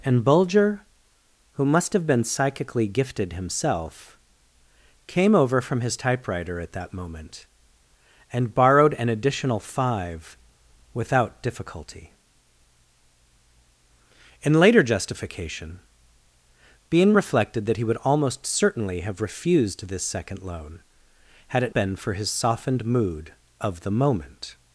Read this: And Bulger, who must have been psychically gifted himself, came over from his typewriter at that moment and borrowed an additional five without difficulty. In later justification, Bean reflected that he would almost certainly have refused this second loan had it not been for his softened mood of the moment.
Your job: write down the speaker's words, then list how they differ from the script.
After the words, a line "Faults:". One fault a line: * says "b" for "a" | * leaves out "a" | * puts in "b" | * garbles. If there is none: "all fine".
And Bulger, who must have been psychically gifted himself, came over from his typewriter at that moment and borrowed an additional five without difficulty. In later justification, Bean reflected that he would almost certainly have refused this second loan had it been for his softened mood of the moment.
Faults:
* leaves out "not"